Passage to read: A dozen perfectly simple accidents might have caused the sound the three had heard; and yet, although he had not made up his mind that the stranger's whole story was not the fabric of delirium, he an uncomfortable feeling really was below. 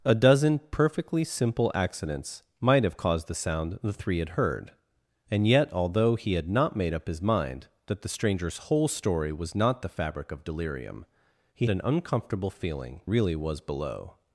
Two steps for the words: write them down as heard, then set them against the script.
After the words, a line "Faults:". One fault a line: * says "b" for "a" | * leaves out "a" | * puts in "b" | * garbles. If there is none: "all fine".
A dozen perfectly simple accidents might have caused the sound the three had heard; and yet, although he had not made up his mind that the stranger's whole story was not the fabric of delirium, he an uncomfortable feeling really was below.
Faults:
all fine